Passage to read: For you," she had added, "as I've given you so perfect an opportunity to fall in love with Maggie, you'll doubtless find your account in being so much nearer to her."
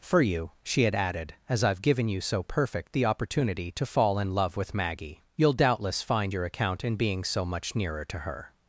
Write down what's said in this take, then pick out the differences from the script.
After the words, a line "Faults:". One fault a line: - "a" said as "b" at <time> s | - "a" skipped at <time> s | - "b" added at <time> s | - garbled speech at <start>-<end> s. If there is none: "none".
For you," she had added, "as I've given you so perfect the opportunity to fall in love with Maggie, you'll doubtless find your account in being so much nearer to her."
Faults:
- "an" said as "the" at 2.9 s